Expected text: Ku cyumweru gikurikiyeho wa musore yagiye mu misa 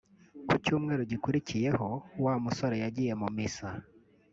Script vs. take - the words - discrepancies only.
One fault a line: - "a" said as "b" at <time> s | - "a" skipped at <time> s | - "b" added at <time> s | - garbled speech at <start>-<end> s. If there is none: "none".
none